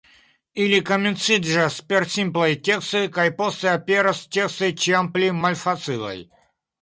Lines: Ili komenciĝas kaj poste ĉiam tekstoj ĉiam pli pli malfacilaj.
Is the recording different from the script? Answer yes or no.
yes